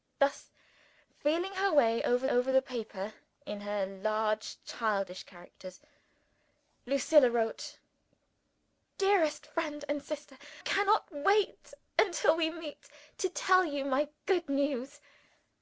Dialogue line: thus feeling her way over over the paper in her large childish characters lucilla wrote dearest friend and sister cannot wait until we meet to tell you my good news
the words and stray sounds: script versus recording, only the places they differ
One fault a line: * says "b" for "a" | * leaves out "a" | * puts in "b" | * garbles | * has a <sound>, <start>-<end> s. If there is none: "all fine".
all fine